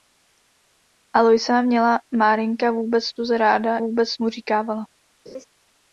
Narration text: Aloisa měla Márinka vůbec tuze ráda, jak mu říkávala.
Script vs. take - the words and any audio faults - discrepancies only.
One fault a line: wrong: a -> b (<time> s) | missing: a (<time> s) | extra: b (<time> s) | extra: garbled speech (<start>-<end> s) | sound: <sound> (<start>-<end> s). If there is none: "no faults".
wrong: jak -> vůbec (3.8 s)
sound: laugh (5.3-5.5 s)